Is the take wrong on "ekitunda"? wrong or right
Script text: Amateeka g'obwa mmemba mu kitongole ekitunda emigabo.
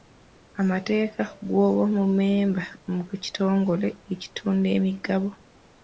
right